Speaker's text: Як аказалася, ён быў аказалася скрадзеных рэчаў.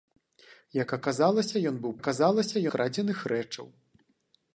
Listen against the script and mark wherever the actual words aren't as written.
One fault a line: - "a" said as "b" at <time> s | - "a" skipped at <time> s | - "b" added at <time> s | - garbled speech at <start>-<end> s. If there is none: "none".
none